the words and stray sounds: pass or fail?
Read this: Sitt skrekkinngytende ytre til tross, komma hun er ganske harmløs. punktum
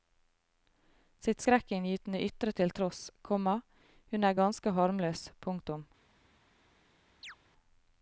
fail